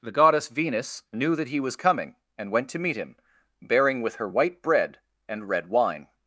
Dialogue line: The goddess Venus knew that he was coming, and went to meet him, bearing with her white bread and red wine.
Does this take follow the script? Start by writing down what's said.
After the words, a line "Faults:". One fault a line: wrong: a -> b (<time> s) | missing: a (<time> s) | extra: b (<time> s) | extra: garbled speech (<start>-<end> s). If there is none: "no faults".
The goddess Venus knew that he was coming, and went to meet him, bearing with her white bread and red wine.
Faults:
no faults